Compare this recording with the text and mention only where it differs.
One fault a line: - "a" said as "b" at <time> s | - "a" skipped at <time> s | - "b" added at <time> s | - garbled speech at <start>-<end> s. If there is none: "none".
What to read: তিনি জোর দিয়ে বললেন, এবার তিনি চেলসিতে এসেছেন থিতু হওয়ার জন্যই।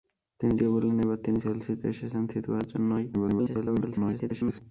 - "জোর" skipped at 0.5 s
- garbled speech at 3.1-4.6 s